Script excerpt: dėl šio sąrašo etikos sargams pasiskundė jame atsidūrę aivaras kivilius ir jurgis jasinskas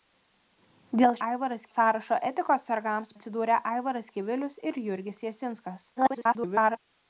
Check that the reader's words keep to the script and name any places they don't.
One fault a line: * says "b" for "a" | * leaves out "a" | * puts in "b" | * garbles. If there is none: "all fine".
* says "aivaras" for "šio"
* leaves out "pasiskundė jame"
* garbles